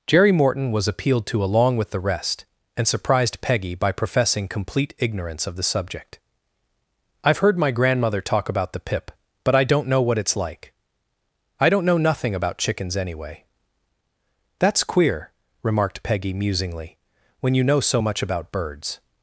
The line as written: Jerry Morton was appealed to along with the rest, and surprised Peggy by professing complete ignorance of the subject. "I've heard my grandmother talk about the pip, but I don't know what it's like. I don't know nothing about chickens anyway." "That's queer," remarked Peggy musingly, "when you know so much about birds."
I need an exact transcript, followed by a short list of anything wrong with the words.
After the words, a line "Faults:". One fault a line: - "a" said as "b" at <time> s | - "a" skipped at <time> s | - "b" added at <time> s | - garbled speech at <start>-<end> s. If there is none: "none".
Jerry Morton was appealed to along with the rest, and surprised Peggy by professing complete ignorance of the subject. "I've heard my grandmother talk about the pip, but I don't know what it's like. I don't know nothing about chickens anyway." "That's queer," remarked Peggy musingly, "when you know so much about birds."
Faults:
none